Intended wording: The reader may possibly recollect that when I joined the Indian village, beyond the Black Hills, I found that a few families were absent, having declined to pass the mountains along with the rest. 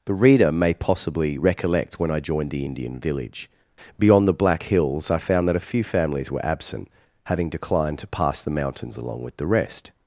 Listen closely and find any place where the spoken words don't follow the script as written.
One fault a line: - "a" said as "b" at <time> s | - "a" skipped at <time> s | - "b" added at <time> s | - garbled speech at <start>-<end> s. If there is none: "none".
- "that" skipped at 2.0 s